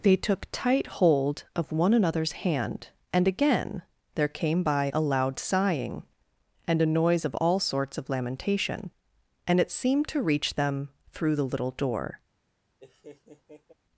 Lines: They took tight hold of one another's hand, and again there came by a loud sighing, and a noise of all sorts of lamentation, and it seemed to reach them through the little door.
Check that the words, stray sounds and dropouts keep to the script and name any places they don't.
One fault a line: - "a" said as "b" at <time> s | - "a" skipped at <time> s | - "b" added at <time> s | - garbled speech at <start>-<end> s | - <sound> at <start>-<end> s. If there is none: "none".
- laugh at 12.8-13.7 s